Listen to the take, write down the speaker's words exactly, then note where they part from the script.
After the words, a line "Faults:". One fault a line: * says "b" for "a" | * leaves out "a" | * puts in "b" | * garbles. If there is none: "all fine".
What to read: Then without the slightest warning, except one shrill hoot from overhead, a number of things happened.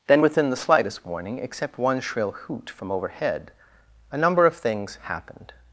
Then within the slightest warning, except one shrill hoot from overhead, a number of things happened.
Faults:
* says "within" for "without"